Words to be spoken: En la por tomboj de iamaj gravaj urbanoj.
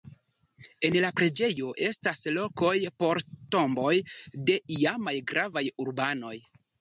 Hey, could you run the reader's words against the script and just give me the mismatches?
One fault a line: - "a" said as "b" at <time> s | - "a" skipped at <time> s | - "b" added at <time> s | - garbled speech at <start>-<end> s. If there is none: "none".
- "preĝejo estas lokoj" added at 1.2 s